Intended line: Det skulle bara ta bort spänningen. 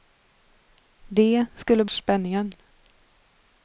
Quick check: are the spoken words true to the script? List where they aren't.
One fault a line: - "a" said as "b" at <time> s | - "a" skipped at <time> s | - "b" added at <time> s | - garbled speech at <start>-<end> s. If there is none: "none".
- "bara ta bort" skipped at 1.9 s